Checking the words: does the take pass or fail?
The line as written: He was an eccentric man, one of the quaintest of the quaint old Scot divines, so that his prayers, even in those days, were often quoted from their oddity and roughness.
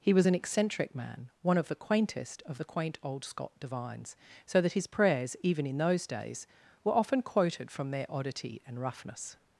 pass